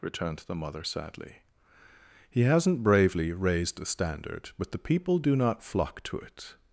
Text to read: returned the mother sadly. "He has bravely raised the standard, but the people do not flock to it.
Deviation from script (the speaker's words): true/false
true